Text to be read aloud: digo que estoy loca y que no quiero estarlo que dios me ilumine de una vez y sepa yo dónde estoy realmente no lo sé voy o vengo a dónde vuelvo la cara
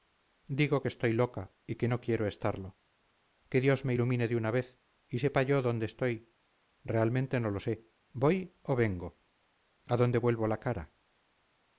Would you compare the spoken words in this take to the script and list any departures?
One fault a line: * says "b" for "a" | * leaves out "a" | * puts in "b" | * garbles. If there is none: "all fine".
all fine